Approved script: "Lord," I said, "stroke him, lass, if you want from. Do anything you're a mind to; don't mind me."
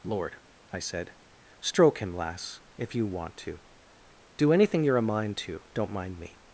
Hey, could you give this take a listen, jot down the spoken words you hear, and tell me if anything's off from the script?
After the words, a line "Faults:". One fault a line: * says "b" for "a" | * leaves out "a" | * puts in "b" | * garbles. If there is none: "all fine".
"Lord," I said, "stroke him, lass, if you want to. Do anything you're a mind to; don't mind me."
Faults:
* says "to" for "from"